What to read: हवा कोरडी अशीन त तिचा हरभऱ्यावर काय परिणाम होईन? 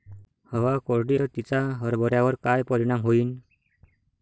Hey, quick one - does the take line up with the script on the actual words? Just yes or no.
no